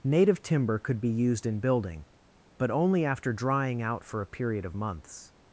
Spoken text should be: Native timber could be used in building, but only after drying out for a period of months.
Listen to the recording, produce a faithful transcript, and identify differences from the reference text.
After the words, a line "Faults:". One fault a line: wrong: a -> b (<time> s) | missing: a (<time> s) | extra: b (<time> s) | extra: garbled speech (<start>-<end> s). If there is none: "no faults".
Native timber could be used in building, but only after drying out for a period of months.
Faults:
no faults